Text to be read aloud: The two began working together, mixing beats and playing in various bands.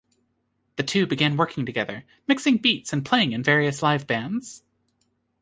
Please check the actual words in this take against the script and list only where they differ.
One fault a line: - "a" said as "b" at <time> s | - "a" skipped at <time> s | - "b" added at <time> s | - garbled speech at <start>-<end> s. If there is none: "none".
- "live" added at 3.8 s